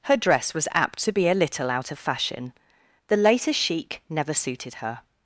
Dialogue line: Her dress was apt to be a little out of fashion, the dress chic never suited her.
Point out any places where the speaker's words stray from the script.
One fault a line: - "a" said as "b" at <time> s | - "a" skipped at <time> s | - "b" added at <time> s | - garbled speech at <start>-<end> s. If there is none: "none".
- "dress" said as "latest" at 3.2 s